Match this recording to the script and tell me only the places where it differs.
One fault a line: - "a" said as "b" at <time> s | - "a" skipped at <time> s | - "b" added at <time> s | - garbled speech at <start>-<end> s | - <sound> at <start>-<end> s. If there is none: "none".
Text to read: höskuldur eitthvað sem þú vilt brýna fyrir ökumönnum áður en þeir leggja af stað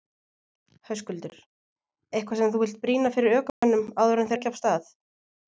- dropout at 3.5-3.6 s
- "þeir" skipped at 4.3 s